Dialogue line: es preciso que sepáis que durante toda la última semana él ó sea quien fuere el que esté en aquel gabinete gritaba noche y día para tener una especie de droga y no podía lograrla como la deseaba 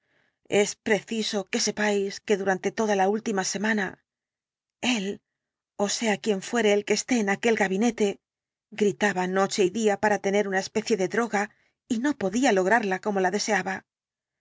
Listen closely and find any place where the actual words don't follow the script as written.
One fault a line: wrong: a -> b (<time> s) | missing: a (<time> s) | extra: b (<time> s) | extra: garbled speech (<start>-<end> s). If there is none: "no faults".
no faults